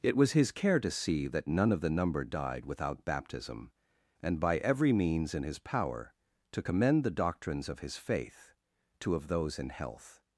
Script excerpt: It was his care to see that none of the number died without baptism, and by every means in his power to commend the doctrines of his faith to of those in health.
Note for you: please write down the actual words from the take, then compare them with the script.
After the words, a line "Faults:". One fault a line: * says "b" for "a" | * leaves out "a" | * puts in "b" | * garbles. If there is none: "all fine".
It was his care to see that none of the number died without baptism, and by every means in his power to commend the doctrines of his faith to of those in health.
Faults:
all fine